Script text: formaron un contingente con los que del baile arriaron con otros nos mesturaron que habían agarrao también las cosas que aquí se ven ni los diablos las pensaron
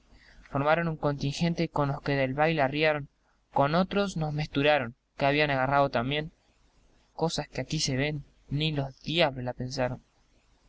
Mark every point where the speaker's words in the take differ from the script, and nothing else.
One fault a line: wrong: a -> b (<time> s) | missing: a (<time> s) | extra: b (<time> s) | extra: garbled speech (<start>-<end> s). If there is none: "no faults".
missing: las (6.3 s)